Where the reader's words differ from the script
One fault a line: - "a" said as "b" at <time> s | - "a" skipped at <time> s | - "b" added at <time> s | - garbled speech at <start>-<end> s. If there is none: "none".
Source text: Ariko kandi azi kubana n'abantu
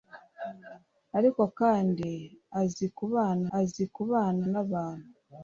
- "azi kubana" added at 3.6 s